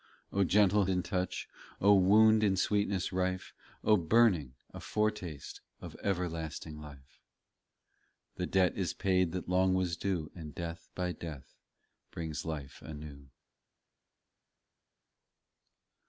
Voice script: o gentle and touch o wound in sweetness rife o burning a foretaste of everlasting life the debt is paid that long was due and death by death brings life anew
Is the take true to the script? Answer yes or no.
yes